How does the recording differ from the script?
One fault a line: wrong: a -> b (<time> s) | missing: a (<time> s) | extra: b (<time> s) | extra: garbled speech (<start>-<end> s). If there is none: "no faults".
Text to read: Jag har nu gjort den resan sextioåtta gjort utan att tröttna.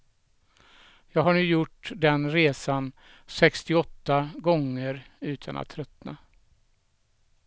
wrong: gjort -> gånger (4.4 s)